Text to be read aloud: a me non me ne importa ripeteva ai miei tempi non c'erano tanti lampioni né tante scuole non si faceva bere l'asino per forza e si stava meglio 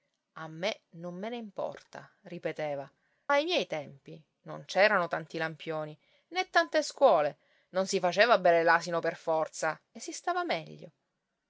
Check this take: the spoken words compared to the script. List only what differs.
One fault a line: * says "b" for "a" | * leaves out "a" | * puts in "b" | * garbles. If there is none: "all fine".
all fine